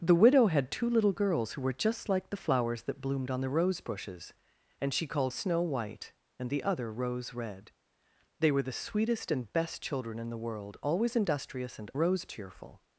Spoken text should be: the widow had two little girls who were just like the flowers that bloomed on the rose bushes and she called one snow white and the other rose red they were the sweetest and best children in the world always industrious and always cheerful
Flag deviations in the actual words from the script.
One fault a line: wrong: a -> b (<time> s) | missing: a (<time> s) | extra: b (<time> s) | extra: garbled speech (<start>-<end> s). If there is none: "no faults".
missing: one (5.3 s)
wrong: always -> rose (12.0 s)